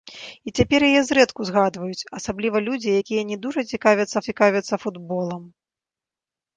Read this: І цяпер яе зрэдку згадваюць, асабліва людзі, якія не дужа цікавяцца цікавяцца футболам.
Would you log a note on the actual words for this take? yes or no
no